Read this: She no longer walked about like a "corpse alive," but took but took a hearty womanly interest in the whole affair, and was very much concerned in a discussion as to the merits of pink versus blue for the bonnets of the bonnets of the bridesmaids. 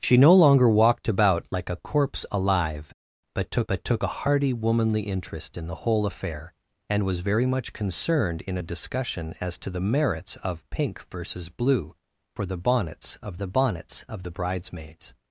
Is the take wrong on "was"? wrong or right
right